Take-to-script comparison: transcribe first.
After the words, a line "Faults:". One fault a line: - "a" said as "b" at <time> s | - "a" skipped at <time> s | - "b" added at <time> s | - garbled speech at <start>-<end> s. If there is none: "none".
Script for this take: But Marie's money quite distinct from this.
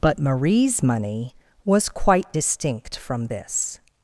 But Marie's money was quite distinct from this.
Faults:
- "was" added at 1.6 s